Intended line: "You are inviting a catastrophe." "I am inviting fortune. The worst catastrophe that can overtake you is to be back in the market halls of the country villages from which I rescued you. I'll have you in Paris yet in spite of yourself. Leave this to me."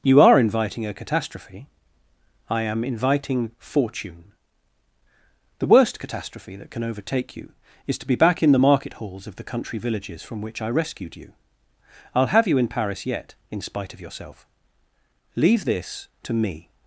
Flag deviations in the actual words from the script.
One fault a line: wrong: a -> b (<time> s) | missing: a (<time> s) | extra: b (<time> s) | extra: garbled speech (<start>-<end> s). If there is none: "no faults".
no faults